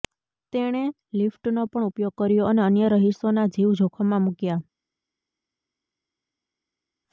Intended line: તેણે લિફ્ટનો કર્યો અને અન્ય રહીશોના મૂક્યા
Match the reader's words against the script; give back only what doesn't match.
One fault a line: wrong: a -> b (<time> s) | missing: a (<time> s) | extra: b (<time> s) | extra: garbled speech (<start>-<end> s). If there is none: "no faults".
extra: પણ ઉપયોગ (1.7 s)
extra: જીવ જોખમમાં (3.5 s)